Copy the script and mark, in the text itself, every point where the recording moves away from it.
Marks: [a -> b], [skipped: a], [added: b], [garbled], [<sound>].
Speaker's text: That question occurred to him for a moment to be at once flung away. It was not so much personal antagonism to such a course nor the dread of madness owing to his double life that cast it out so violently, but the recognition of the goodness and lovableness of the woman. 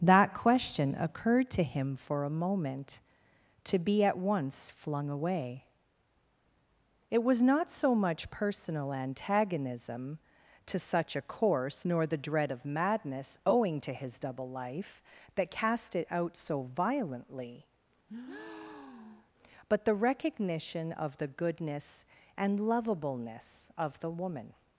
That question occurred to him for a moment to be at once flung away. It was not so much personal antagonism to such a course nor the dread of madness owing to his double life that cast it out so violently, [breath] but the recognition of the goodness and lovableness of the woman.